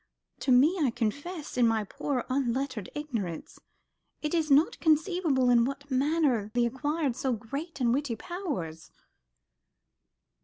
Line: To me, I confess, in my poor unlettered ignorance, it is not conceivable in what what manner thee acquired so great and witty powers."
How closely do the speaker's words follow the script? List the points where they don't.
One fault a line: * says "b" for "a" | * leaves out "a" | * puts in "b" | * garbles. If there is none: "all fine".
* leaves out "what"